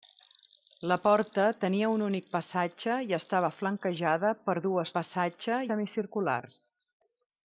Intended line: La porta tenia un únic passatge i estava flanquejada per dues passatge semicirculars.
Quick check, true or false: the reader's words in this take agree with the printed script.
true